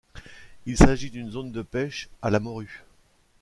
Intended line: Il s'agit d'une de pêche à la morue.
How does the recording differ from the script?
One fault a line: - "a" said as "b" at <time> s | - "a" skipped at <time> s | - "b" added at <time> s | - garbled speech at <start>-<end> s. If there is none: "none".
- "zone" added at 1.3 s